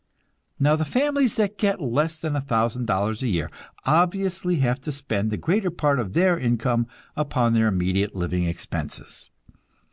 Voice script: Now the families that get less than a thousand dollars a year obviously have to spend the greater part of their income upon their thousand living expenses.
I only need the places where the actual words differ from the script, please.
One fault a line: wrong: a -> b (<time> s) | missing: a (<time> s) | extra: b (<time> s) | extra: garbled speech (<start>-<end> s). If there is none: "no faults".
wrong: thousand -> immediate (7.7 s)